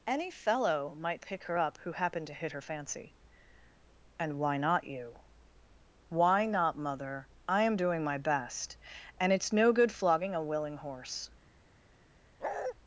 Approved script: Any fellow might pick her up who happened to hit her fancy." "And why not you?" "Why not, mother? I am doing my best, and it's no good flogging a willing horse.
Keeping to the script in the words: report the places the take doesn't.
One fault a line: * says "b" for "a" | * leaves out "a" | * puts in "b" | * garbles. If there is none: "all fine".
all fine